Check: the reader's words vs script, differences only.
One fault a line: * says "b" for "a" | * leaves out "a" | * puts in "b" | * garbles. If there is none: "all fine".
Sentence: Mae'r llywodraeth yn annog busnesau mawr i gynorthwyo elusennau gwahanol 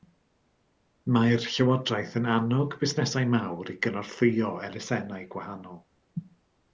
all fine